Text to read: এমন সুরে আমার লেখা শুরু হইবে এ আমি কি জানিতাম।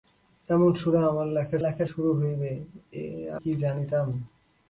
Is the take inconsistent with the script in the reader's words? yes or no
yes